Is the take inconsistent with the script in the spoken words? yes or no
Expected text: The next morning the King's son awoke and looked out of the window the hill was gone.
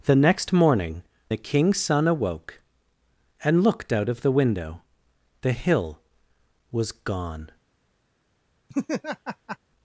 no